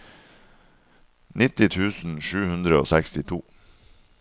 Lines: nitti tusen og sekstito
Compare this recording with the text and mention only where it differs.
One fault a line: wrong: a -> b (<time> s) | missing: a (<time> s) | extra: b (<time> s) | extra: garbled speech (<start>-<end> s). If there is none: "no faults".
extra: sju hundre (2.3 s)